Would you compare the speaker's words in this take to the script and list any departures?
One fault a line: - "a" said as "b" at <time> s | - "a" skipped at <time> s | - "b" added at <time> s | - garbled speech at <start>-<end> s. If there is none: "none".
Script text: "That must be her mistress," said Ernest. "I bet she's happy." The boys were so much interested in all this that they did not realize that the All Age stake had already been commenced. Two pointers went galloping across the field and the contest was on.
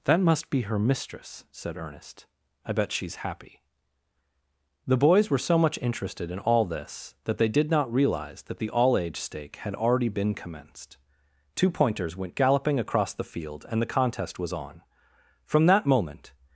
- "From that moment" added at 15.4 s